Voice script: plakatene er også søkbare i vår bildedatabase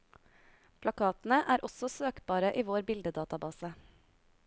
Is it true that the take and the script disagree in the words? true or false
false